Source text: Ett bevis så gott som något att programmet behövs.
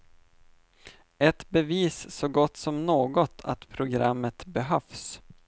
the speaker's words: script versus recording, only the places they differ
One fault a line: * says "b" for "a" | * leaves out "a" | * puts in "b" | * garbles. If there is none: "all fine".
all fine